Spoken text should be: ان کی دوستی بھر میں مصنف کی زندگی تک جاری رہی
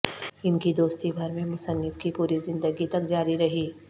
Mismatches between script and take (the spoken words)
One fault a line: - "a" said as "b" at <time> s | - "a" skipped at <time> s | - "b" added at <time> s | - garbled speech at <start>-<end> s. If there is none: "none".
- "پوری" added at 2.1 s